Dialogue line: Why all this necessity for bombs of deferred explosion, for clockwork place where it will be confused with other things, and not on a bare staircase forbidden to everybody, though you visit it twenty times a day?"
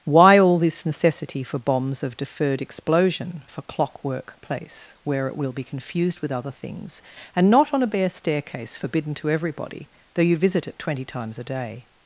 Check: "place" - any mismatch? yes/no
no